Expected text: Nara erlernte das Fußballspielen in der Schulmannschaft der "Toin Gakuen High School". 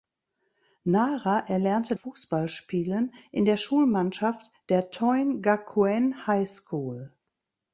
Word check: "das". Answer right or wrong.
wrong